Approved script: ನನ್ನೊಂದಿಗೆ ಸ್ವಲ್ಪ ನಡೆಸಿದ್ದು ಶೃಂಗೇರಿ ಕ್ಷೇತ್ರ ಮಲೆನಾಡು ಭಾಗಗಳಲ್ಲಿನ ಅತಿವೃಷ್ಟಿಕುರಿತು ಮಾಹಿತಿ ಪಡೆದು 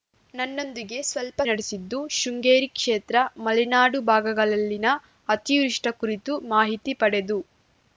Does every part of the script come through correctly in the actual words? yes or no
yes